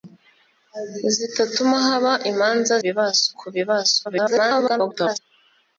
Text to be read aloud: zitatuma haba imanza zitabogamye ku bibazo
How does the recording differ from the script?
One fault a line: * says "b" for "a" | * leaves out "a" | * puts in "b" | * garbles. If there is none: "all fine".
* says "bibazo" for "zitabogamye"
* garbles